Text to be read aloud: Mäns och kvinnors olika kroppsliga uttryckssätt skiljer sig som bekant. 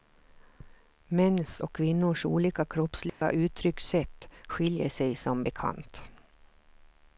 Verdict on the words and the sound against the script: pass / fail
fail